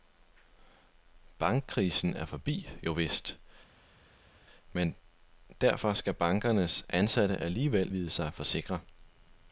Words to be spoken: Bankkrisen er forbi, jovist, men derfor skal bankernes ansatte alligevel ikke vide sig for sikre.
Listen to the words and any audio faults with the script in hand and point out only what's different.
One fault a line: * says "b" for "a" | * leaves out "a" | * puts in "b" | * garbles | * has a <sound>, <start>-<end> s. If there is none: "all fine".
* leaves out "ikke"